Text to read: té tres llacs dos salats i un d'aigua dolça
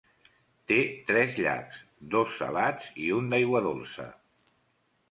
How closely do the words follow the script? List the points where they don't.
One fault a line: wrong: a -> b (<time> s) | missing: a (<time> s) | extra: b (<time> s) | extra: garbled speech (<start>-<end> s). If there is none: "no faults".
no faults